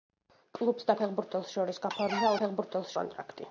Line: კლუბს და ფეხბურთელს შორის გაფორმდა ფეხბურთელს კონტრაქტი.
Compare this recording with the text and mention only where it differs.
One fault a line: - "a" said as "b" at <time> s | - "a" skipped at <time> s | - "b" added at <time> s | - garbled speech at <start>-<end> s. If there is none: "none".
none